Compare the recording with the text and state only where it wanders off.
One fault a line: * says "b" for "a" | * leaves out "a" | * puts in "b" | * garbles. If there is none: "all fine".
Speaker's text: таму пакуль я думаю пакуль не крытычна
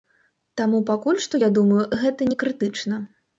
* puts in "што"
* says "гэта" for "пакуль"